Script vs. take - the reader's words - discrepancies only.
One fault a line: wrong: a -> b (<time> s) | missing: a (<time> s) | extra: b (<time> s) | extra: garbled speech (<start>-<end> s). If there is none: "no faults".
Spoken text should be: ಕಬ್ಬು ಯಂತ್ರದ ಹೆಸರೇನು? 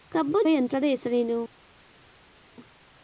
no faults